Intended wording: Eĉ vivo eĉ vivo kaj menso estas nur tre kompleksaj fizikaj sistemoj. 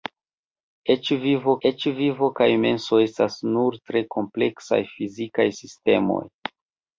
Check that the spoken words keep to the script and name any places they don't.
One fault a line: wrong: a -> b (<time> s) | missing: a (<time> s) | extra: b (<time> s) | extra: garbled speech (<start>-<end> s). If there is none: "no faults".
no faults